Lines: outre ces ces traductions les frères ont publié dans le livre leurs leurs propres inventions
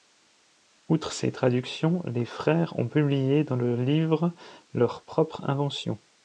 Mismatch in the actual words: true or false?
true